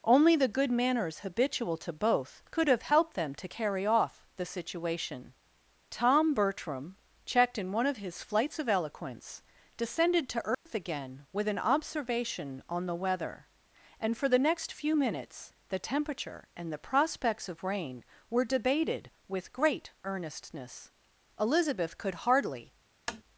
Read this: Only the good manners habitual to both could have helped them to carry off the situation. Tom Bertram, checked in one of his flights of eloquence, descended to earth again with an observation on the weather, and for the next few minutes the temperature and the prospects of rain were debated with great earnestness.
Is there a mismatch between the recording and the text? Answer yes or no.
yes